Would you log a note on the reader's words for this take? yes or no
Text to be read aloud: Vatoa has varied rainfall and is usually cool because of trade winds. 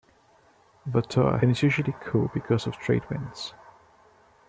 yes